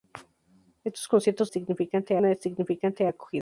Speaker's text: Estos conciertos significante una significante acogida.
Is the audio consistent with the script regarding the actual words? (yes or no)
yes